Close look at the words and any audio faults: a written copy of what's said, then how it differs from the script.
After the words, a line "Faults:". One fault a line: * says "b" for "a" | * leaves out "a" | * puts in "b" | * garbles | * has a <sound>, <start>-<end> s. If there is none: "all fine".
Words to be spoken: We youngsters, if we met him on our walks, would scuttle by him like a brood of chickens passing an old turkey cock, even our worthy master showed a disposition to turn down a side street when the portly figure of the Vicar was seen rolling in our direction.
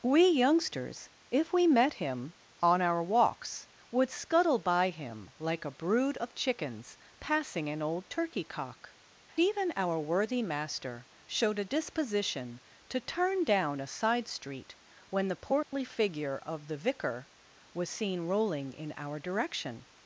We youngsters, if we met him on our walks, would scuttle by him like a brood of chickens passing an old turkey cock, even our worthy master showed a disposition to turn down a side street when the portly figure of the Vicar was seen rolling in our direction.
Faults:
* has a dropout, 15.6-15.7 s